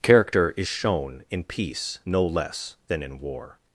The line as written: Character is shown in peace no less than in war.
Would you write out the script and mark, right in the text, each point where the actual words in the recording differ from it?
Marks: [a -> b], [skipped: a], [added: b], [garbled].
Character is shown in peace no less than in war.